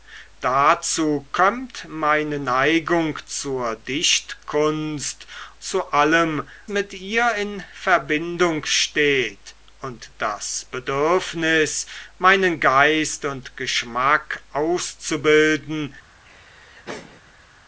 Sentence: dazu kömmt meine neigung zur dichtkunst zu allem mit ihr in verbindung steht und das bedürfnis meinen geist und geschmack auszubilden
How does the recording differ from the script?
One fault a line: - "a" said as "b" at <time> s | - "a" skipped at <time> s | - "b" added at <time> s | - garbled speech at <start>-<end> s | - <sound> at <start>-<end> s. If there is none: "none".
- laugh at 16.2-17.5 s